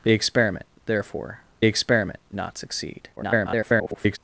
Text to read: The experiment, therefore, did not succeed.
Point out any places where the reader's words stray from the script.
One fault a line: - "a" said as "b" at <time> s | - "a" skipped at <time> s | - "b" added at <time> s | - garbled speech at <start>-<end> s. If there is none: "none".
- "did" said as "experiment" at 1.6 s
- garbled speech at 3.2-4.2 s